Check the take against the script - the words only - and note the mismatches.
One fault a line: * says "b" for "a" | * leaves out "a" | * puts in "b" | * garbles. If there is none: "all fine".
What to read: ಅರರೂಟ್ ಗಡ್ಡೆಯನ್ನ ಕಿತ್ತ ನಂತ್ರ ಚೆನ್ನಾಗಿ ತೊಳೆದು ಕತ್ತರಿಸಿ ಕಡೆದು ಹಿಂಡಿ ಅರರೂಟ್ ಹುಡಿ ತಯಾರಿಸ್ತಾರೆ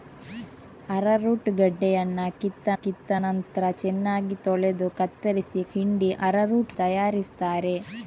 * puts in "ಕಿತ್ತ"
* leaves out "ಕಡೆದು"
* leaves out "ಹುಡಿ"